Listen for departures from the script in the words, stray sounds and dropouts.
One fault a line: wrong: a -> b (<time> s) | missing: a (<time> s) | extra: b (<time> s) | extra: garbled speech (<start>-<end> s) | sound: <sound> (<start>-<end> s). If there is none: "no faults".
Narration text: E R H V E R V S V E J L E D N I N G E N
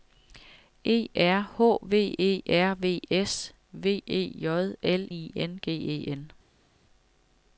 missing: E D N (5.1 s)